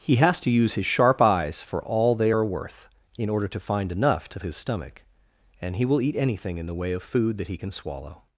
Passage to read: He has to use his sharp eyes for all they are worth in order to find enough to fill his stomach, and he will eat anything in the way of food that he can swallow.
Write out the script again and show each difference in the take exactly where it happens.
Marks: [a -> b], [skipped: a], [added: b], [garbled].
He has to use his sharp eyes for all they are worth in order to find enough to [skipped: fill] his stomach, and he will eat anything in the way of food that he can swallow.